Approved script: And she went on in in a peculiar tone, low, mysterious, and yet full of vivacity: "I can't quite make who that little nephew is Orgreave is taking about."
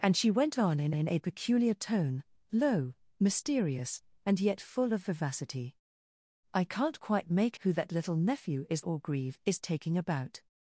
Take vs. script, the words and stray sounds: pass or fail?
pass